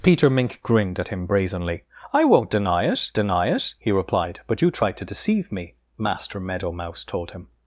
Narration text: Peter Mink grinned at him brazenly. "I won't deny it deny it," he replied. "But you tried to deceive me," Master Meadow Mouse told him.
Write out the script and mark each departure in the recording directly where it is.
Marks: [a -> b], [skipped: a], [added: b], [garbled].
Peter Mink grinned at him brazenly. "I won't deny it deny it," he replied. "But you tried to deceive me," Master Meadow Mouse told him.